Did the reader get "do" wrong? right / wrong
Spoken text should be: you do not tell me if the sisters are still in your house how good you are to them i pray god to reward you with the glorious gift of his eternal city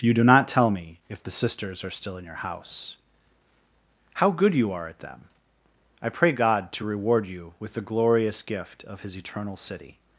right